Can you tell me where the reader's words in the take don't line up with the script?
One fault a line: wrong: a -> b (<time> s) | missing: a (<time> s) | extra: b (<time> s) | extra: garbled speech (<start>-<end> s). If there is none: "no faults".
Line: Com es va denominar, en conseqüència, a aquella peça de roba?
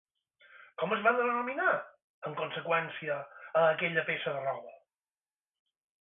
no faults